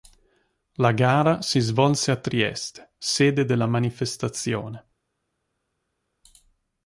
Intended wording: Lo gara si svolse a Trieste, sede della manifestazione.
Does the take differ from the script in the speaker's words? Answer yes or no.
yes